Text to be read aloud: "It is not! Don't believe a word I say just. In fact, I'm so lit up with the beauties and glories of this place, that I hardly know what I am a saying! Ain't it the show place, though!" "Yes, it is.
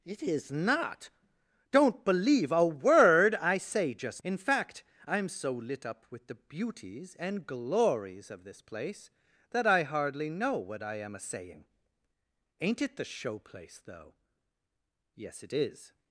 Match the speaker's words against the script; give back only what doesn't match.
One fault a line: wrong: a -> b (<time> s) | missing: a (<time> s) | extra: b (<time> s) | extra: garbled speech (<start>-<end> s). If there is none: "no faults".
no faults